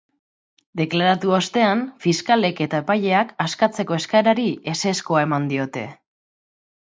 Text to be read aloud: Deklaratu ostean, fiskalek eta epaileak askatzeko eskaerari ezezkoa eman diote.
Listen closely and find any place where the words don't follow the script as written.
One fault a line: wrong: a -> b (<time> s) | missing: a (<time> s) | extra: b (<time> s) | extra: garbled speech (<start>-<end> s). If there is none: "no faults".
no faults